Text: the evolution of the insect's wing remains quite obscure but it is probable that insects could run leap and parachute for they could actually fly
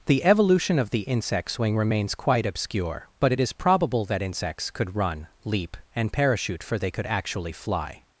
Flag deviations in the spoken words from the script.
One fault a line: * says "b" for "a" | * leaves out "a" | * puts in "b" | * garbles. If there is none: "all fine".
all fine